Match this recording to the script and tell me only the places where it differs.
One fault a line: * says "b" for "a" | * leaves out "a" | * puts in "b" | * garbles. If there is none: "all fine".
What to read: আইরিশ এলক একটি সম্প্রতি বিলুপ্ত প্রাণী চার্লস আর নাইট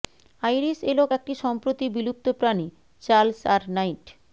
all fine